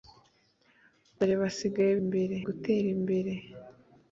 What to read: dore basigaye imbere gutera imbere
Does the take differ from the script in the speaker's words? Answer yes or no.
no